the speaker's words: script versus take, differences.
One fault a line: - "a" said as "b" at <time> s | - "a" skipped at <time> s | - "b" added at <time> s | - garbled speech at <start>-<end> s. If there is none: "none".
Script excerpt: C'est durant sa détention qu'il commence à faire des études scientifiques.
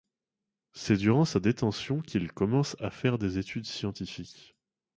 none